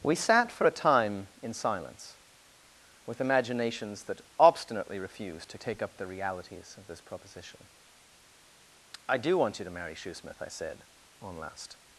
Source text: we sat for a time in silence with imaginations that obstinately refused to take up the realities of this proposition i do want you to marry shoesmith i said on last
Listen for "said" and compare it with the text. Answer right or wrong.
right